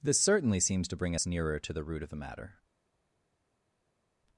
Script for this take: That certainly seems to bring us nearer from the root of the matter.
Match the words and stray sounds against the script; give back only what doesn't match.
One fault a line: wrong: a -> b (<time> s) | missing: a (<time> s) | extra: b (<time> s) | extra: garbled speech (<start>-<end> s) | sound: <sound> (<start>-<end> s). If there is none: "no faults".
wrong: That -> This (0.0 s)
wrong: from -> to (1.6 s)